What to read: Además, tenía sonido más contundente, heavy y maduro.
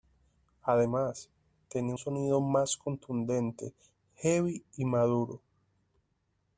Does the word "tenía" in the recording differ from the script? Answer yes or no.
no